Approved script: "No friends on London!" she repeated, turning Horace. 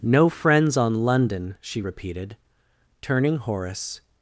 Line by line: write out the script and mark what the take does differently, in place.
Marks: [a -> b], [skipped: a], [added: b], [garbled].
"No friends on London!" she repeated, turning Horace.